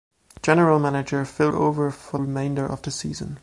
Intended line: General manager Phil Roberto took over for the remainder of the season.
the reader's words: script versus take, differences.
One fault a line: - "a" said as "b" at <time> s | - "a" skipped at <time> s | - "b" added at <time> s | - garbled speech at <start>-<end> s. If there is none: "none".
- "Roberto took" skipped at 1.5 s
- "the" skipped at 2.2 s